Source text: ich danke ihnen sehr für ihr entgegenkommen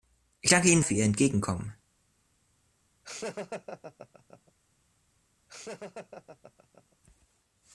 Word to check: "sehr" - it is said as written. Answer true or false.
false